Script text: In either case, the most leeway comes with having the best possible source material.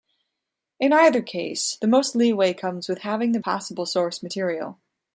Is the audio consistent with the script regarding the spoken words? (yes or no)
no